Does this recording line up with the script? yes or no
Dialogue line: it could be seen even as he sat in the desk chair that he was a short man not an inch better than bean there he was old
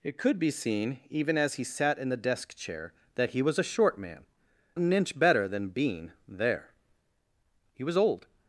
no